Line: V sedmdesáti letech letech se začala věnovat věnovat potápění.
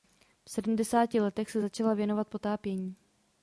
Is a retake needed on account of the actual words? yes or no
yes